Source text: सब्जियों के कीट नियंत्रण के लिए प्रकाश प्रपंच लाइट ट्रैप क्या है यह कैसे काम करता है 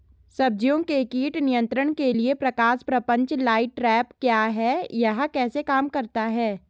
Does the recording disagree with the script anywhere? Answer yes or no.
no